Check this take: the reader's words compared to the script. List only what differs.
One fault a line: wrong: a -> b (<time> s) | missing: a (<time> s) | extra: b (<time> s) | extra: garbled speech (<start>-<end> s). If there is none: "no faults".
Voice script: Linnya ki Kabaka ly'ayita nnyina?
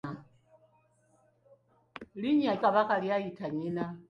missing: ki (2.6 s)